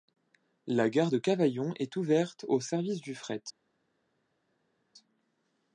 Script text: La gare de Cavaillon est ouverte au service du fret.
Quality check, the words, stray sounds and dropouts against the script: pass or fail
pass